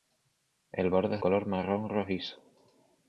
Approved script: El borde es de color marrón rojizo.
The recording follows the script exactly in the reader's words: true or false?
false